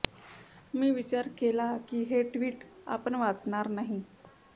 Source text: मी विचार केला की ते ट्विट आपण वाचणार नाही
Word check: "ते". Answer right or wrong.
wrong